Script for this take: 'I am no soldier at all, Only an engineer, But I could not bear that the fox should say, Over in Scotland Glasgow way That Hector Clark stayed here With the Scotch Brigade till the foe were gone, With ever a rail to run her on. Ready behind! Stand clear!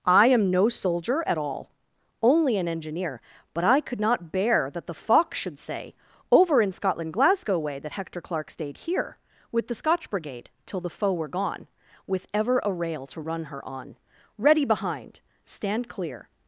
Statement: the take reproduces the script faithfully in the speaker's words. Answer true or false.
true